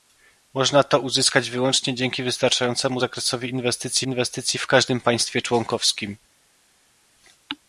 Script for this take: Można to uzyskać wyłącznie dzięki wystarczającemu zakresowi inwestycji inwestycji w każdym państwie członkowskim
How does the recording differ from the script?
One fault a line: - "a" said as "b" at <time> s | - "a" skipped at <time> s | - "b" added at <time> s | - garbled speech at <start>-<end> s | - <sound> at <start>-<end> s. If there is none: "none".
none